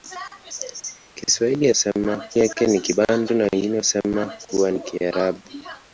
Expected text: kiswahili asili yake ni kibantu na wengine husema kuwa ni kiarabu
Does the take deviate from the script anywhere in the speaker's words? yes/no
yes